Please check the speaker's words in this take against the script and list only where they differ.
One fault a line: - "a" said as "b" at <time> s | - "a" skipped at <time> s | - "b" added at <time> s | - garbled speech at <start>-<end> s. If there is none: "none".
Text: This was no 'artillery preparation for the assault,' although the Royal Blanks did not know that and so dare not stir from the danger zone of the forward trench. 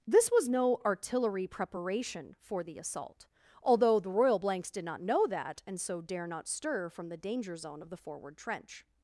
none